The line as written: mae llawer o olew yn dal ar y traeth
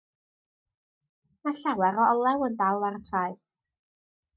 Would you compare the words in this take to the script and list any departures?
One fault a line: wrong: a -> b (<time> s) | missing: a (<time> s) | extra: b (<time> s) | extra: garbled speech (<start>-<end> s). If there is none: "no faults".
no faults